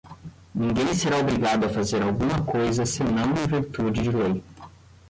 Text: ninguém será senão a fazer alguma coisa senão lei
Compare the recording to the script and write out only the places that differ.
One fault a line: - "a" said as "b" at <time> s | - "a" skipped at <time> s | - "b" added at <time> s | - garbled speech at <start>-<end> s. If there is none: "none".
- "senão" said as "obrigado" at 1.2 s
- "em virtude de" added at 3.4 s